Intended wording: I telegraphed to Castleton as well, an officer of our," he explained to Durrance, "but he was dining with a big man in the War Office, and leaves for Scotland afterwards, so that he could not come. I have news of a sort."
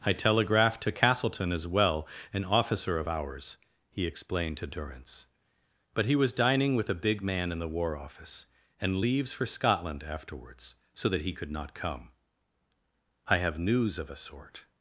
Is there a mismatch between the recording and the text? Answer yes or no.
yes